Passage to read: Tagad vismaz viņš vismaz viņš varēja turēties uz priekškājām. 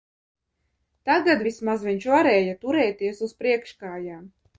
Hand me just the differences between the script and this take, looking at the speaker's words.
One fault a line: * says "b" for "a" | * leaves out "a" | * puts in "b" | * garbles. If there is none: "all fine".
* leaves out "vismaz viņš"